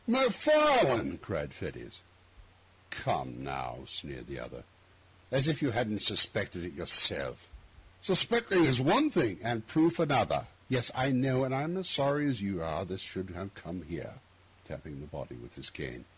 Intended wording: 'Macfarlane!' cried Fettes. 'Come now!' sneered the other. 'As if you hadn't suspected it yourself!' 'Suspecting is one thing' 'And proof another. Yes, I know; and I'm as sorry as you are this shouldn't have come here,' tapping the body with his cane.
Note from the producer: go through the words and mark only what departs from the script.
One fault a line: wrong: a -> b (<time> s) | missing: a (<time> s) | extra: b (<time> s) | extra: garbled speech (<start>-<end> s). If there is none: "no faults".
wrong: shouldn't -> should (13.0 s)